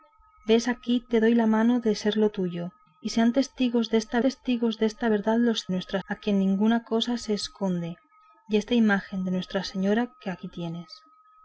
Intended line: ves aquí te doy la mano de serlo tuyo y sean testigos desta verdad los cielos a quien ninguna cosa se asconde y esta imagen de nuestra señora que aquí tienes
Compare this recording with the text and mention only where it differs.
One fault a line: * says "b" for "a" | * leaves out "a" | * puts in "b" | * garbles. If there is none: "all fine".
* puts in "testigos desta"
* says "nuestra" for "cielos"